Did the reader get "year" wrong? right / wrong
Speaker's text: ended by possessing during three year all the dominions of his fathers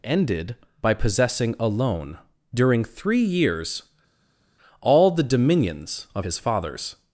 wrong